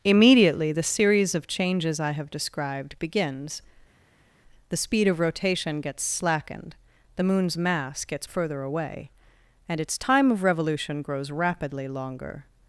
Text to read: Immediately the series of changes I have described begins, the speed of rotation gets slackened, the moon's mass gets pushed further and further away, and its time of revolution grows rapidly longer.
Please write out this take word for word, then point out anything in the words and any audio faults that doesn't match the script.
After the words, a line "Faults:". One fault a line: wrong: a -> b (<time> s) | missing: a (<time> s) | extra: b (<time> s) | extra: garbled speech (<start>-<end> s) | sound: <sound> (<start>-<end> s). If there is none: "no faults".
Immediately the series of changes I have described begins, the speed of rotation gets slackened, the moon's mass gets further away, and its time of revolution grows rapidly longer.
Faults:
missing: pushed further and (8.2 s)